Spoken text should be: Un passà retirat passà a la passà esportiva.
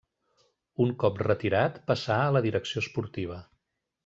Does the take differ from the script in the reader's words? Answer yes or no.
yes